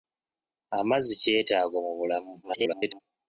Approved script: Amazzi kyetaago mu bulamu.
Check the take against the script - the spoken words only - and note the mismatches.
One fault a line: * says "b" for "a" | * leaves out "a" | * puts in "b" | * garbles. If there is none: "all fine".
* garbles